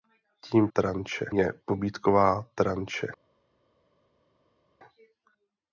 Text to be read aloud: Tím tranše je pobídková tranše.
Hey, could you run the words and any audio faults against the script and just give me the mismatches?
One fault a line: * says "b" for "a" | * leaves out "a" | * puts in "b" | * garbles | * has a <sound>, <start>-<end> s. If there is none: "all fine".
all fine